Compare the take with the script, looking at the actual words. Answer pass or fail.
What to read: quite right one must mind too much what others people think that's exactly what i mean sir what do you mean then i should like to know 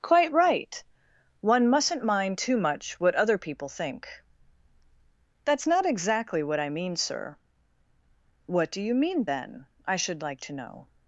fail